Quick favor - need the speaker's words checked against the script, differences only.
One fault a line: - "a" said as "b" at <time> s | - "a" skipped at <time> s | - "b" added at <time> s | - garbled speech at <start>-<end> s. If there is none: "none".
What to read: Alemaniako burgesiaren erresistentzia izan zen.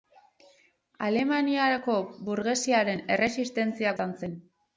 none